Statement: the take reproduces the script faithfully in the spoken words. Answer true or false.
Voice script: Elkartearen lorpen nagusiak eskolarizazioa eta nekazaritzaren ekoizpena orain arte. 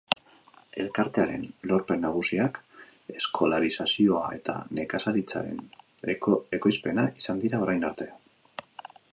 false